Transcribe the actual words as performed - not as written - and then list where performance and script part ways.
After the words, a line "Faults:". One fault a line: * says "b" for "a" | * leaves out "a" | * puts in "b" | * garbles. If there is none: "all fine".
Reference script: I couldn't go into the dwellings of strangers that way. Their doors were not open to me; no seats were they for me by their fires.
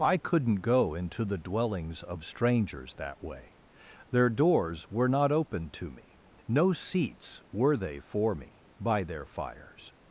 I couldn't go into the dwellings of strangers that way. Their doors were not open to me; no seats were they for me by their fires.
Faults:
all fine